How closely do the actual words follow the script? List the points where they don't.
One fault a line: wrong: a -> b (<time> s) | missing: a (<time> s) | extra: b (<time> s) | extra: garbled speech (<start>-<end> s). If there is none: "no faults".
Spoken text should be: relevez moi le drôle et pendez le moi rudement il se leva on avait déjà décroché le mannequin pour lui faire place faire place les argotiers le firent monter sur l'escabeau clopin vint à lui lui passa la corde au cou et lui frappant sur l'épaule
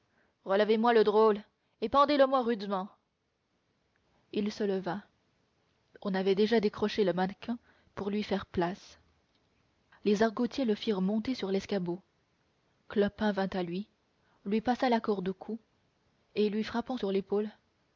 missing: faire place (9.0 s)